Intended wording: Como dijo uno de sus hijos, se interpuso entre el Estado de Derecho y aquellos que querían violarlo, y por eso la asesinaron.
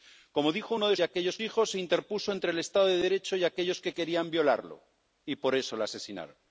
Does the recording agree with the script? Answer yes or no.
no